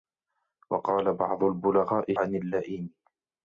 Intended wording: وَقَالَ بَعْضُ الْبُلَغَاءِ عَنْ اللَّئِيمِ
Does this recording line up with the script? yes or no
yes